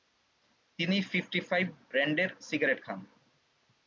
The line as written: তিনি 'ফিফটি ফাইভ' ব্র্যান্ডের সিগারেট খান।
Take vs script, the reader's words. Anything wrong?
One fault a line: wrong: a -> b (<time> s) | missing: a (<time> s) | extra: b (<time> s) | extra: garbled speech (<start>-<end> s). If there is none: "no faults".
no faults